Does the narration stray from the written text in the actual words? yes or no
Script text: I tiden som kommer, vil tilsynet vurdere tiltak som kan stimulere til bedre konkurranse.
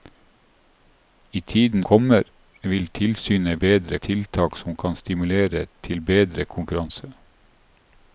yes